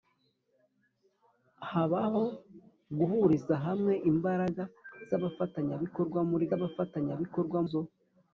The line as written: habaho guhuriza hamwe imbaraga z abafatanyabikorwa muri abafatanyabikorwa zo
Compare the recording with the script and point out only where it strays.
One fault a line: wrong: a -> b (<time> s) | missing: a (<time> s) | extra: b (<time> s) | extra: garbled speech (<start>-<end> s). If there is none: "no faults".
no faults